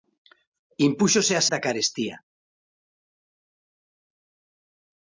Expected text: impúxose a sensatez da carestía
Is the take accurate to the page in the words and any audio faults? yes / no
no